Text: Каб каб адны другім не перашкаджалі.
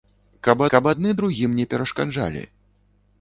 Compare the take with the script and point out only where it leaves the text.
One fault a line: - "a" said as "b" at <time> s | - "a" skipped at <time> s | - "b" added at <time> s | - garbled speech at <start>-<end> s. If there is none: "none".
none